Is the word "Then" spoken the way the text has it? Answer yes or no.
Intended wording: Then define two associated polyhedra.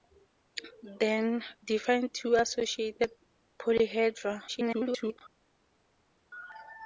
yes